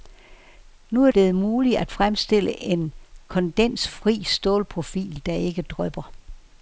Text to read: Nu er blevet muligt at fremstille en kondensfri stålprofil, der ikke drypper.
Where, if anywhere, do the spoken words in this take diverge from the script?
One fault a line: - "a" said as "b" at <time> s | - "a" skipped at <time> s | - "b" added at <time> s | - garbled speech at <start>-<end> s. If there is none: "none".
none